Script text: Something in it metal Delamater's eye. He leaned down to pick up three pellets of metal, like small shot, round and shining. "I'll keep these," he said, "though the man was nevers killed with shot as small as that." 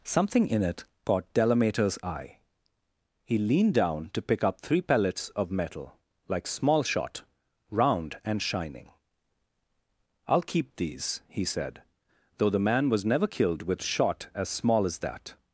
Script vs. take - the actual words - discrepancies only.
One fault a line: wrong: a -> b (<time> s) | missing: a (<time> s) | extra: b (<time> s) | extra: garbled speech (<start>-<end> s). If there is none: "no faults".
wrong: metal -> caught (1.1 s)
wrong: nevers -> never (13.1 s)